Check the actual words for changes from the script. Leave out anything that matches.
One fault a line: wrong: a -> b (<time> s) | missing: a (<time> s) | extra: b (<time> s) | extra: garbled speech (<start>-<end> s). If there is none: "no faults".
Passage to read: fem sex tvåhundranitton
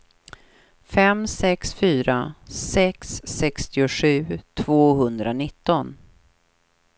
extra: fyra sex sextiosju (1.7 s)